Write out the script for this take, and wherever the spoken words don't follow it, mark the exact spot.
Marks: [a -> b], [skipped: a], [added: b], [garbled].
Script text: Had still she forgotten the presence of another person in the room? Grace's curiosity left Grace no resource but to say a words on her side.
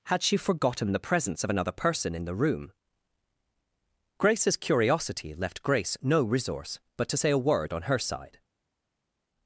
Had [skipped: still] she forgotten the presence of another person in the room? Grace's curiosity left Grace no resource but to say a [words -> word] on her side.